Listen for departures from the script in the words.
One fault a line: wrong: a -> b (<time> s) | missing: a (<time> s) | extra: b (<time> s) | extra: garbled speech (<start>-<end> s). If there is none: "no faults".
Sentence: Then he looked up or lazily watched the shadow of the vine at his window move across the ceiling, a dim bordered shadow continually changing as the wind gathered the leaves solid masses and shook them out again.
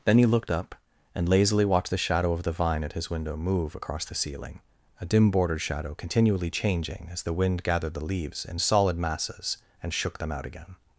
wrong: or -> and (1.1 s)
extra: in (8.4 s)